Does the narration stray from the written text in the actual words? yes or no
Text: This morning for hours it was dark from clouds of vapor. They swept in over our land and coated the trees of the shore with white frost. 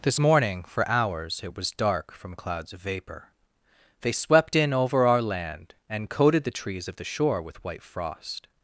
no